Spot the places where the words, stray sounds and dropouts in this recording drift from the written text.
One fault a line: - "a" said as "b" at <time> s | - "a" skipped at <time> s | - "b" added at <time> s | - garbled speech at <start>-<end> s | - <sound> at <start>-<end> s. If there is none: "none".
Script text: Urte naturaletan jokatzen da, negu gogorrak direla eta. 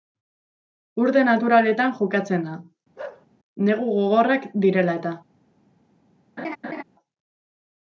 - bark at 3.0-3.3 s
- laugh at 6.4-6.8 s